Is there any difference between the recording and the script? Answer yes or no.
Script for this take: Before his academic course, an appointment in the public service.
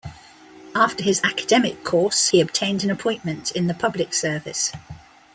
yes